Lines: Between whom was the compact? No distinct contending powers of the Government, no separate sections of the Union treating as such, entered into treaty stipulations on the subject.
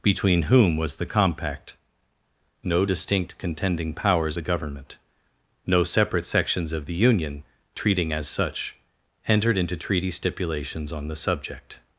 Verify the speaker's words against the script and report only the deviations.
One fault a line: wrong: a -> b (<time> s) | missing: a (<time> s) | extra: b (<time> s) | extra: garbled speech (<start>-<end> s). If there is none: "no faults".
missing: of (4.4 s)